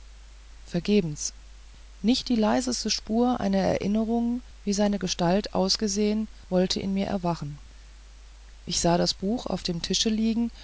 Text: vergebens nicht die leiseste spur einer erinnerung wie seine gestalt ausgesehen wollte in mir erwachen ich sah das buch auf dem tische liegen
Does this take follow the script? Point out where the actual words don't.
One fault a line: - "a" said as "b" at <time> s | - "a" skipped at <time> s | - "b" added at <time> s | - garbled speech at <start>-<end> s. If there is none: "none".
none